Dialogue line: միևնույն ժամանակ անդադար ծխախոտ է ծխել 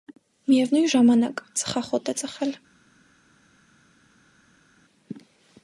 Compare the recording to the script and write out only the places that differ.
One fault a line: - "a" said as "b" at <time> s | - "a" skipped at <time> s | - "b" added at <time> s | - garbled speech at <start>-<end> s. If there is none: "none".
- "անդադար" skipped at 1.4 s